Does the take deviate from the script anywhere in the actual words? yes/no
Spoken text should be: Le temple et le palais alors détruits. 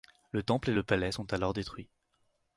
yes